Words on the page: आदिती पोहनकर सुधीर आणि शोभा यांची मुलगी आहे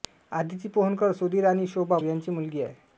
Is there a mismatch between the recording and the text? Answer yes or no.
no